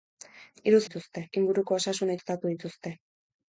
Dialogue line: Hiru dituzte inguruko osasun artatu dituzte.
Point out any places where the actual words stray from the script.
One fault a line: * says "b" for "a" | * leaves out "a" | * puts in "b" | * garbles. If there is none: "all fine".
all fine